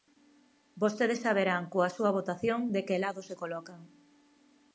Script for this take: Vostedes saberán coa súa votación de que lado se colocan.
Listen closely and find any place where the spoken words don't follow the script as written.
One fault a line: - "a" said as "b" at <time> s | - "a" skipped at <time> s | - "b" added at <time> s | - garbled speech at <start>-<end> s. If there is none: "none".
none